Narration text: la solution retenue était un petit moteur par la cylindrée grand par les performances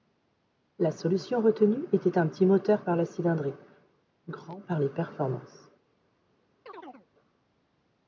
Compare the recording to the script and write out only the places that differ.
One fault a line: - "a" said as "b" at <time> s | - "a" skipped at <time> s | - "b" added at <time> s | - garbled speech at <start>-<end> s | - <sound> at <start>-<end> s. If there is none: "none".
- chirp at 6.7-7.1 s